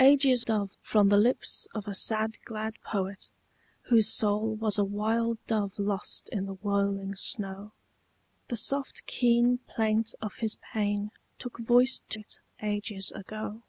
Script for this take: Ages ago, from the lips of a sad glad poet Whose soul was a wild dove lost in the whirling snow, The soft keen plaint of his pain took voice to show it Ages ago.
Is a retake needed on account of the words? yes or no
yes